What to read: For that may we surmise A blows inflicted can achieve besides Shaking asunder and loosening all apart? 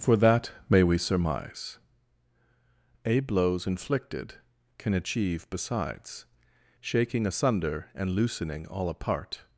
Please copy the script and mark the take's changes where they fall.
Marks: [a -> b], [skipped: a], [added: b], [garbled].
For that may we surmise A blows inflicted can achieve besides Shaking asunder and loosening all apart?